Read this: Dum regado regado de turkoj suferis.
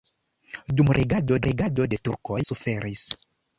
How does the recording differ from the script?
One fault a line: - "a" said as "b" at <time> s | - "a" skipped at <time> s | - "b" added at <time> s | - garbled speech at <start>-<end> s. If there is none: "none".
none